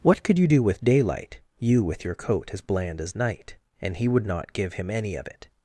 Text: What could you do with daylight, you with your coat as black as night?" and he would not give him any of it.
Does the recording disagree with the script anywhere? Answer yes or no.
yes